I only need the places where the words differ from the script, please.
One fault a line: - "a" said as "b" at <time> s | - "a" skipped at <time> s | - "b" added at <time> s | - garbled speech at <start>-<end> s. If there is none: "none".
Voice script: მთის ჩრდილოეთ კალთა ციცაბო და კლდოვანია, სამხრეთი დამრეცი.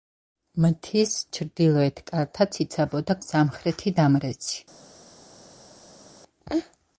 - "კლდოვანია" skipped at 3.2 s